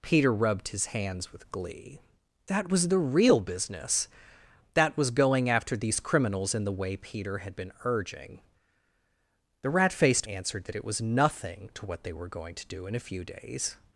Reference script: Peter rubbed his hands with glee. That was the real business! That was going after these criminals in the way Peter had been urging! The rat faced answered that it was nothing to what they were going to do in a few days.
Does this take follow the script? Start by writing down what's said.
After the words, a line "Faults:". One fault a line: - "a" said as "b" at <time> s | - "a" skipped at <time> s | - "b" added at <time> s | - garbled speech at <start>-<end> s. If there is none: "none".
Peter rubbed his hands with glee. That was the real business! That was going after these criminals in the way Peter had been urging! The rat faced answered that it was nothing to what they were going to do in a few days.
Faults:
none